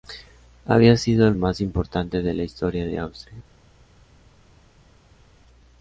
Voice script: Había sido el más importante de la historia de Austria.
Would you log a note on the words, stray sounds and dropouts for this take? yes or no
no